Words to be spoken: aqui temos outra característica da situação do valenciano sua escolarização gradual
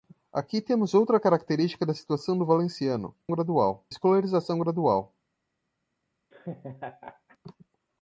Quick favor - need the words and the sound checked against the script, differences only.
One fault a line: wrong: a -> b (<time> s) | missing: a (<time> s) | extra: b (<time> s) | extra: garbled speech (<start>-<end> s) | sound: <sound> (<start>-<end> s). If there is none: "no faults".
wrong: sua -> gradual (3.3 s)
sound: laugh (6.3-7.4 s)